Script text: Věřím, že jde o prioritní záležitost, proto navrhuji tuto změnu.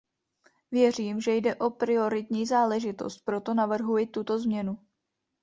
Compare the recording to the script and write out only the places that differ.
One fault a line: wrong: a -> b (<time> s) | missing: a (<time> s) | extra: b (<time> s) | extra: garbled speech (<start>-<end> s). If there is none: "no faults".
no faults